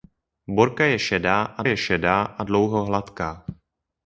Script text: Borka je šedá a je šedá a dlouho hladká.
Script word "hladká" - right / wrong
right